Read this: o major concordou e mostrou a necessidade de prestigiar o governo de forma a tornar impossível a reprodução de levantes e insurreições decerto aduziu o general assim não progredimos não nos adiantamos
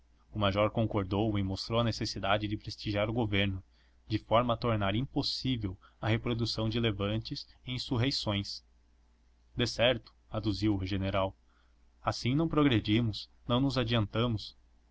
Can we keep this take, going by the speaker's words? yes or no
yes